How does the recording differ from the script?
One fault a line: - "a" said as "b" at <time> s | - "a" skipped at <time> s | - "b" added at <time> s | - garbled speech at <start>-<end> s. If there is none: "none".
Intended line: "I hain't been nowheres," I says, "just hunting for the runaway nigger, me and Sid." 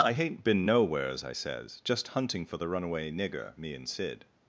none